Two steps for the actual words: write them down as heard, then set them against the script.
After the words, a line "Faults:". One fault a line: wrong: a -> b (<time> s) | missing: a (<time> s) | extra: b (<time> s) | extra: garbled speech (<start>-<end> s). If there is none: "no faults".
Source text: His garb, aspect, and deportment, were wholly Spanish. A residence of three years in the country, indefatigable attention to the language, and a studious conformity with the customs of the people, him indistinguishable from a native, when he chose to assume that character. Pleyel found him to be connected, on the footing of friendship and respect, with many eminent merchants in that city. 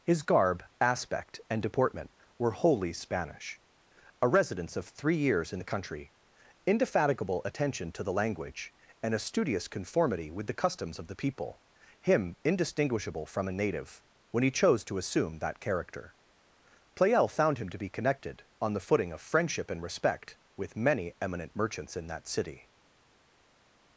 His garb, aspect, and deportment, were wholly Spanish. A residence of three years in the country, indefatigable attention to the language, and a studious conformity with the customs of the people, him indistinguishable from a native, when he chose to assume that character. Pleyel found him to be connected, on the footing of friendship and respect, with many eminent merchants in that city.
Faults:
no faults